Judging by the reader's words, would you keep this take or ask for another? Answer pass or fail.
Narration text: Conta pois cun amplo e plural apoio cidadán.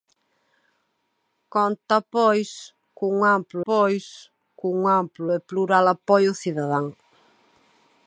fail